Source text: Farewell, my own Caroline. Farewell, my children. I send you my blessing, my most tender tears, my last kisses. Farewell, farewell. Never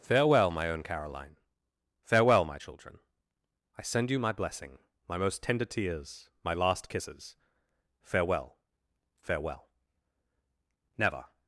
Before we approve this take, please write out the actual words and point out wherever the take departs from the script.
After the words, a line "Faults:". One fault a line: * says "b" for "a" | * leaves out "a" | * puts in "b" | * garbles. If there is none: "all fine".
Farewell, my own Caroline. Farewell, my children. I send you my blessing, my most tender tears, my last kisses. Farewell, farewell. Never
Faults:
all fine